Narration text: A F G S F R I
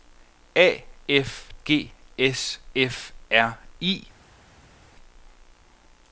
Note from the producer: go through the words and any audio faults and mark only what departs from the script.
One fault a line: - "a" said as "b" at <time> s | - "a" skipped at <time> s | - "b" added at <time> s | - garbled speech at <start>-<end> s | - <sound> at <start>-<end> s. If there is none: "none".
none